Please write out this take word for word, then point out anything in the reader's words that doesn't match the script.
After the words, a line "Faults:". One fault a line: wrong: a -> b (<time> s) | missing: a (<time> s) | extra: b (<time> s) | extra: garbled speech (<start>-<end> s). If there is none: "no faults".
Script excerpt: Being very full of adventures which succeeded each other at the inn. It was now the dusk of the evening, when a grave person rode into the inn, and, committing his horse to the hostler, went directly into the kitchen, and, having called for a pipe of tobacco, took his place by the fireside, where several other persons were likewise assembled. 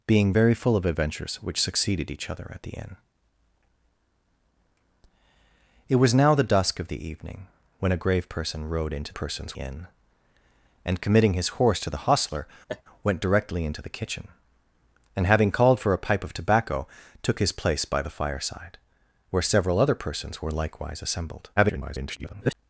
Being very full of adventures which succeeded each other at the inn. It was now the dusk of the evening, when a grave person rode into persons inn, and, committing his horse to the hostler, went directly into the kitchen, and, having called for a pipe of tobacco, took his place by the fireside, where several other persons were likewise assembled. [garbled]
Faults:
wrong: the -> persons (9.1 s)
extra: garbled speech (21.6-22.5 s)